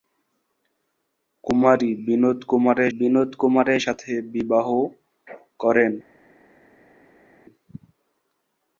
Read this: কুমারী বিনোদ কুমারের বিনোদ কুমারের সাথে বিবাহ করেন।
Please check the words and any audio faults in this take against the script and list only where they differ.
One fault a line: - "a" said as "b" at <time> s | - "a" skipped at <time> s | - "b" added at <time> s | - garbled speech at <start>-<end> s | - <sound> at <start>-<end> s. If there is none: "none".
none